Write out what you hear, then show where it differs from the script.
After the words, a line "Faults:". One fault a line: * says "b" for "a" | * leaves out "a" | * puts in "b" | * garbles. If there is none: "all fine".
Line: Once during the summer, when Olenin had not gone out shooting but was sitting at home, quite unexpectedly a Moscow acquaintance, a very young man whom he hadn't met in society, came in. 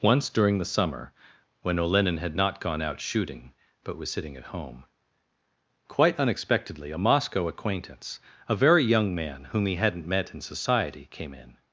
Once during the summer, when Olenin had not gone out shooting but was sitting at home, quite unexpectedly a Moscow acquaintance, a very young man whom he hadn't met in society, came in.
Faults:
all fine